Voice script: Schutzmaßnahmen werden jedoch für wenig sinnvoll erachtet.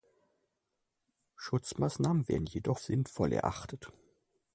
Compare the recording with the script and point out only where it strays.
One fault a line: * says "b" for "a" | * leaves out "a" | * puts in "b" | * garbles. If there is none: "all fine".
* leaves out "für wenig"